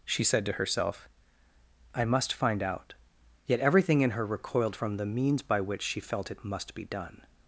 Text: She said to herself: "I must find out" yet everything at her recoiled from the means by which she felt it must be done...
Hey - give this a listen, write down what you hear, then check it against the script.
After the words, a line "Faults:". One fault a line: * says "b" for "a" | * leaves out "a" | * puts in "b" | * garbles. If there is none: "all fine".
She said to herself: "I must find out" yet everything in her recoiled from the means by which she felt it must be done...
Faults:
* says "in" for "at"